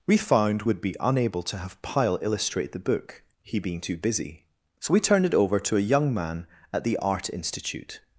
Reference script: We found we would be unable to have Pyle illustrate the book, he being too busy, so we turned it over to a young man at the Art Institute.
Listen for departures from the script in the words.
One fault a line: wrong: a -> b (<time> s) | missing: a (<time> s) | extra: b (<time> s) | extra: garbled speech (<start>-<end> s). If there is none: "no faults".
missing: we (0.6 s)